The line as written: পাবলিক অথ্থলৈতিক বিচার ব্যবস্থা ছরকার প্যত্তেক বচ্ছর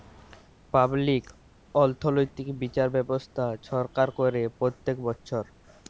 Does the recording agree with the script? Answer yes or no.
no